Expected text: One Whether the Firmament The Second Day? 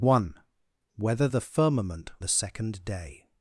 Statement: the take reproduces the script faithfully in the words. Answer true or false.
true